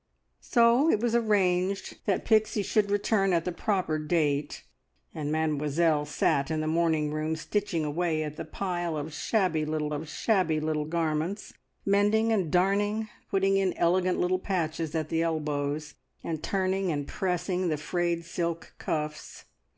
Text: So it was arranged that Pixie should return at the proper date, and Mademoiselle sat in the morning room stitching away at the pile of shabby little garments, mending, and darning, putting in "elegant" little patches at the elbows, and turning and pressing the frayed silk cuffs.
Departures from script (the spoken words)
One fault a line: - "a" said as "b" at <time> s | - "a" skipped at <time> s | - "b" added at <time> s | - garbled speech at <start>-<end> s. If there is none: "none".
- "of shabby little" added at 9.9 s